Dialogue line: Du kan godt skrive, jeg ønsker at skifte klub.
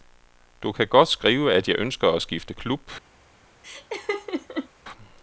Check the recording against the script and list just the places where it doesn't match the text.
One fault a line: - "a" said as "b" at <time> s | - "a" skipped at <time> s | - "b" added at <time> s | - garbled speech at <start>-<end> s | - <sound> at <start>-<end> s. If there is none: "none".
- "at" added at 1.5 s
- laugh at 3.6-4.7 s